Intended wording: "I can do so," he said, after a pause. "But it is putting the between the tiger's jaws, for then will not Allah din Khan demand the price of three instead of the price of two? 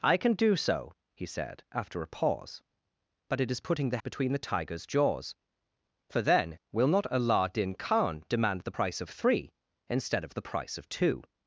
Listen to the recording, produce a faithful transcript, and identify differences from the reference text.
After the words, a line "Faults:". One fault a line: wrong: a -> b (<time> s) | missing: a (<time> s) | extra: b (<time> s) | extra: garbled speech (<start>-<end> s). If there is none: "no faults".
"I can do so," he said, after a pause. "But it is putting the between the tiger's jaws, for then will not Allah din Khan demand the price of three instead of the price of two?
Faults:
no faults